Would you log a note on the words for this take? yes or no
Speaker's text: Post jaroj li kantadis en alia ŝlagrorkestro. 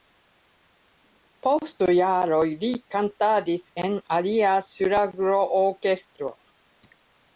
no